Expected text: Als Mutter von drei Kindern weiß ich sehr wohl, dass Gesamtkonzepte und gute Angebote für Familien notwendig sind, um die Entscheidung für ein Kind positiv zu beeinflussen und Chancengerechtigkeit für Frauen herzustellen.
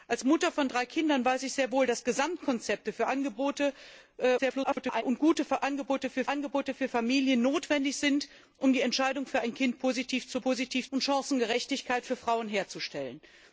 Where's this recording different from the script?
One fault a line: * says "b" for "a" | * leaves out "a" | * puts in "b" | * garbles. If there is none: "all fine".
* garbles
* puts in "Angebote für"
* says "positiv" for "beeinflussen"